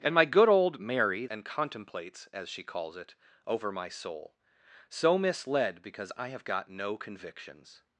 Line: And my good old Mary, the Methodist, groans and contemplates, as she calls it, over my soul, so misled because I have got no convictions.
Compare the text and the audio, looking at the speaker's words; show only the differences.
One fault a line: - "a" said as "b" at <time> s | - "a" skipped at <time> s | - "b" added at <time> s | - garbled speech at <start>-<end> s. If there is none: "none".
- "the Methodist groans" skipped at 1.3 s